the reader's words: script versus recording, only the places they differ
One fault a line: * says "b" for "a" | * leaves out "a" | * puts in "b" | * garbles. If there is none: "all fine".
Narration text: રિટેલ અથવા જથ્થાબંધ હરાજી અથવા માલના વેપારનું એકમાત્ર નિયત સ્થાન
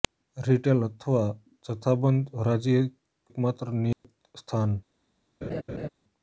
* leaves out "અથવા માલના વેપારનું"